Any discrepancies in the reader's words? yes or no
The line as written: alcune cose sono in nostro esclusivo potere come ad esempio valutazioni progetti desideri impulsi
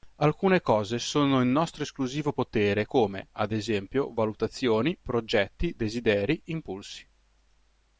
no